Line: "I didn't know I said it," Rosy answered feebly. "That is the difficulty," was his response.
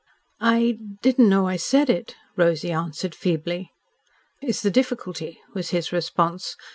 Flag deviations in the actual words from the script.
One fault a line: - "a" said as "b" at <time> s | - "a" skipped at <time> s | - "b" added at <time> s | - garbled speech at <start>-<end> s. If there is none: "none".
- "That" skipped at 3.7 s